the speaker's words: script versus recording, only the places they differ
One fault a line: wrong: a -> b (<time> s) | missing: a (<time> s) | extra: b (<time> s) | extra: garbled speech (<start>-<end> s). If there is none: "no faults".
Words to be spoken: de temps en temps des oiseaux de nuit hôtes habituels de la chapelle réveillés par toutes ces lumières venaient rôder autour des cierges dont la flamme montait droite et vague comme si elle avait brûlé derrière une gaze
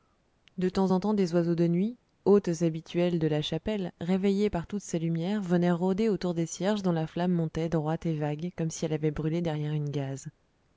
no faults